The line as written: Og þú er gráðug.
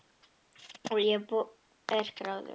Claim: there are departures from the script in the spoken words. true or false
true